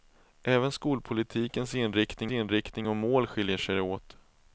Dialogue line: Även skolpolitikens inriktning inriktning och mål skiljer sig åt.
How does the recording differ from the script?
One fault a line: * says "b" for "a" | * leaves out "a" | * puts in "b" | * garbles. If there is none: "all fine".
all fine